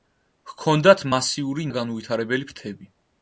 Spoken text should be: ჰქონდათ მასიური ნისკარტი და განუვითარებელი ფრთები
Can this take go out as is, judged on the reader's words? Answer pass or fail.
fail